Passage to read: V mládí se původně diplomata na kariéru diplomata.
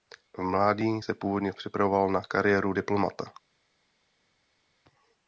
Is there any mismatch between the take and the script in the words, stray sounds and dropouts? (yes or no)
yes